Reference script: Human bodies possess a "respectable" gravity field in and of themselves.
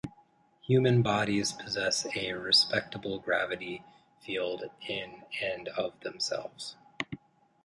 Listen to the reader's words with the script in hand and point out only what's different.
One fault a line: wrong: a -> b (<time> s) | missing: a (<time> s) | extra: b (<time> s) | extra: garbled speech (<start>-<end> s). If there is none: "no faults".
no faults